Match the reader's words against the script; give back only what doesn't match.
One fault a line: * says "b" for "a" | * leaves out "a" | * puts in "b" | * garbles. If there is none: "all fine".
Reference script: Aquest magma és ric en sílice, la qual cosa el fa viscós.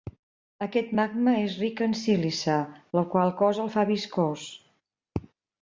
all fine